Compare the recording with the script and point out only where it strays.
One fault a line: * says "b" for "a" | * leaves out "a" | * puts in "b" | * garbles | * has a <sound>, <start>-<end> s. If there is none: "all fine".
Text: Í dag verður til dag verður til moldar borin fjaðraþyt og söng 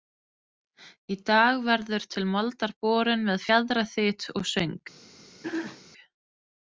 * leaves out "dag verður til"
* puts in "með"
* has a throat clearing, 5.4-5.8 s